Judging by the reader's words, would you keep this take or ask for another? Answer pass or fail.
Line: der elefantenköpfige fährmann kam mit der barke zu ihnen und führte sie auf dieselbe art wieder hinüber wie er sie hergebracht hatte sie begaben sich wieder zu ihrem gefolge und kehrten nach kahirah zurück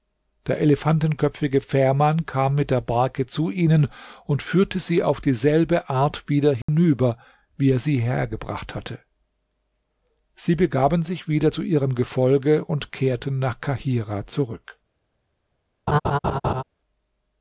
pass